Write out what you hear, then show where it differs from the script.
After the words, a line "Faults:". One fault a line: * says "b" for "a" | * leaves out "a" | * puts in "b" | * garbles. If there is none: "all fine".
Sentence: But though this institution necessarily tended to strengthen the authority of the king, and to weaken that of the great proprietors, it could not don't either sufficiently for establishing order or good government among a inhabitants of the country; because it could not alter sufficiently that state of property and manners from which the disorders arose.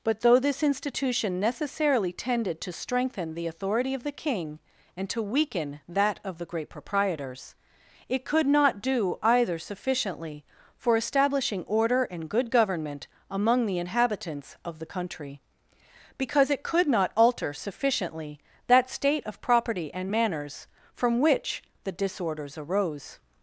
But though this institution necessarily tended to strengthen the authority of the king, and to weaken that of the great proprietors, it could not do either sufficiently for establishing order and good government among the inhabitants of the country; because it could not alter sufficiently that state of property and manners from which the disorders arose.
Faults:
* says "do" for "don't"
* says "and" for "or"
* says "the" for "a"